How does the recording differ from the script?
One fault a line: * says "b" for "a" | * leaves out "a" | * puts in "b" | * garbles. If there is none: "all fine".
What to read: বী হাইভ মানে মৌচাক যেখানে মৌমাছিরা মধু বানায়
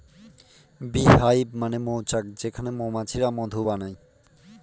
all fine